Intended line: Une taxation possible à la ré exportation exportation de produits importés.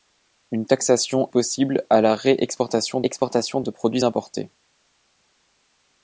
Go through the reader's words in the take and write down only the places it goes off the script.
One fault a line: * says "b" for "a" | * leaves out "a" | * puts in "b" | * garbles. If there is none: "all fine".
all fine